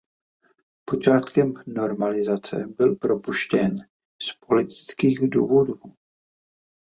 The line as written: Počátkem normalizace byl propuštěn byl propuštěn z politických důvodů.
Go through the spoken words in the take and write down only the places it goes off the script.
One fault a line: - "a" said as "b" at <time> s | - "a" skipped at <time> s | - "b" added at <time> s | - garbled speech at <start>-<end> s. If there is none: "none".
- "byl propuštěn" skipped at 3.7 s